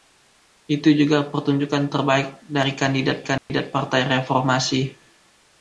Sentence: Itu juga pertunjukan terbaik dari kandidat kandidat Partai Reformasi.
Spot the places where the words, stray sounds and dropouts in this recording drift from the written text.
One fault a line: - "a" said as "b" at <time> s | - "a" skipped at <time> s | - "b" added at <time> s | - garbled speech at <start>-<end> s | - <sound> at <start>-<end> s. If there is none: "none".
- dropout at 3.4-3.5 s